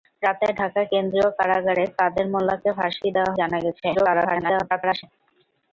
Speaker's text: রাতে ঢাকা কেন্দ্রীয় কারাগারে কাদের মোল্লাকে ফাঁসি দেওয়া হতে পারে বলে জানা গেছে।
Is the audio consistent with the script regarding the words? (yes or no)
no